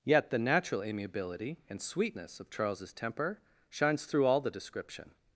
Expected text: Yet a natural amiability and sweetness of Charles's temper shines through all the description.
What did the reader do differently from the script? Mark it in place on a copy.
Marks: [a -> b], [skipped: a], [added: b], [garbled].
Yet [a -> the] natural amiability and sweetness of Charles's temper shines through all the description.